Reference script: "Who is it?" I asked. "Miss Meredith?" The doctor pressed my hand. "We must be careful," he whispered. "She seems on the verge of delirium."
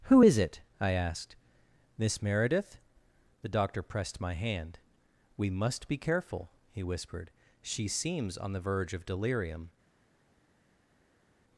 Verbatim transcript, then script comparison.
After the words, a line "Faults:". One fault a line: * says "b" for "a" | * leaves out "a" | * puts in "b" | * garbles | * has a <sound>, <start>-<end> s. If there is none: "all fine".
"Who is it?" I asked. "Miss Meredith?" The doctor pressed my hand. "We must be careful," he whispered. "She seems on the verge of delirium."
Faults:
all fine